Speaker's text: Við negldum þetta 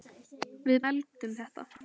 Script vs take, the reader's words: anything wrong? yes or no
no